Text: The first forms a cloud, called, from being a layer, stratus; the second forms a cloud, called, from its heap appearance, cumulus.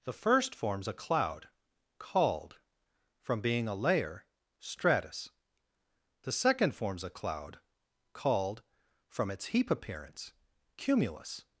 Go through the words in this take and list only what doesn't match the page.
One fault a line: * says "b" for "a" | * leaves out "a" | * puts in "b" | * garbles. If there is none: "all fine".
all fine